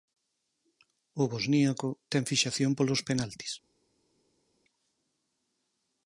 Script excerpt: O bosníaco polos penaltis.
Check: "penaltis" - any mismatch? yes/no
no